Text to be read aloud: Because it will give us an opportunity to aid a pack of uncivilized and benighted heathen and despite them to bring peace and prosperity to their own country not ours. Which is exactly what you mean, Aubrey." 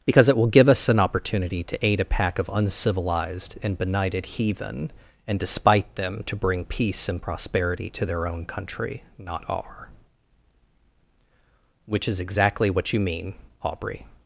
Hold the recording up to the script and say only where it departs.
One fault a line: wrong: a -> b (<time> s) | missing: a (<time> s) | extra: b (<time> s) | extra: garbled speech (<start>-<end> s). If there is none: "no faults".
wrong: ours -> our (9.5 s)